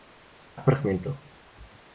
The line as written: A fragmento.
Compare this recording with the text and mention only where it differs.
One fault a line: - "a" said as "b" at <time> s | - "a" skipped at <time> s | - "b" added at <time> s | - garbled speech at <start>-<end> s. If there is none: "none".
none